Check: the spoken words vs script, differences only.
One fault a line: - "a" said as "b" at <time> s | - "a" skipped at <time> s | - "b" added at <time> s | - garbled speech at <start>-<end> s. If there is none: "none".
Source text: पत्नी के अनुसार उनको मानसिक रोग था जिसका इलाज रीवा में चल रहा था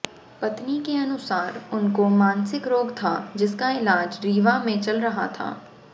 none